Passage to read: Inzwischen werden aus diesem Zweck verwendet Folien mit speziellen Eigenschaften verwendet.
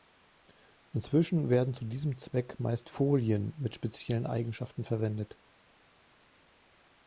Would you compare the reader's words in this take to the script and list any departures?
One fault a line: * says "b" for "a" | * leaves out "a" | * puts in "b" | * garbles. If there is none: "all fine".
* says "zu" for "aus"
* says "meist" for "verwendet"